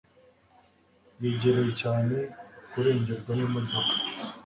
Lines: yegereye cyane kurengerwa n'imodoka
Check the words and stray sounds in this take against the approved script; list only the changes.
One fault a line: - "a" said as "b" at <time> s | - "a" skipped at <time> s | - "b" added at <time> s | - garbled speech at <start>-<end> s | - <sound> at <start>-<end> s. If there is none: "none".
none